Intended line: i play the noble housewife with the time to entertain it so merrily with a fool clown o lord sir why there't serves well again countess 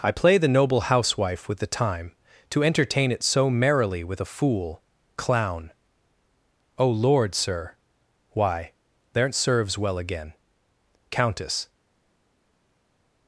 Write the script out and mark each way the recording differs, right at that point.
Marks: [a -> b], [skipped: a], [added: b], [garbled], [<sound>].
i play the noble housewife with the time to entertain it so merrily with a fool clown o lord sir why there't serves well again countess